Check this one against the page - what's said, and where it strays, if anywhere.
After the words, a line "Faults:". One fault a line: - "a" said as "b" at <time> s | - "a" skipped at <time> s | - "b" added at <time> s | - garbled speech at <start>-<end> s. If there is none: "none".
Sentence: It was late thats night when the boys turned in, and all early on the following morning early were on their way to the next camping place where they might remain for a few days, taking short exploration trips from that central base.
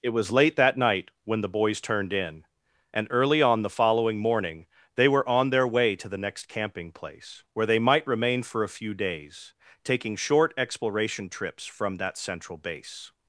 It was late that night when the boys turned in, and early on the following morning they were on their way to the next camping place where they might remain for a few days, taking short exploration trips from that central base.
Faults:
- "thats" said as "that" at 0.6 s
- "all" skipped at 3.1 s
- "early" said as "they" at 5.0 s